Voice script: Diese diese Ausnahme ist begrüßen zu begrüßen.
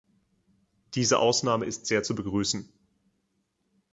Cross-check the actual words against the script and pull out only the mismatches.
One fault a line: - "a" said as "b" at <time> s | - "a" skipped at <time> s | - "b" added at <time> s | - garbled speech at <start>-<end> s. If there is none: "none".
- "diese" skipped at 1.2 s
- "begrüßen" said as "sehr" at 1.9 s